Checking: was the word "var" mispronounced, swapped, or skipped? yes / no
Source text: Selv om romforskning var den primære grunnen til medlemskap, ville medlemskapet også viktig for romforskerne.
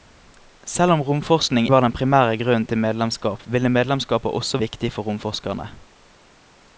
no